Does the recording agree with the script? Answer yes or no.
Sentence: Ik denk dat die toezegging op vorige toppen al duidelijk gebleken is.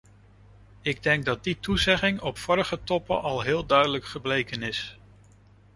no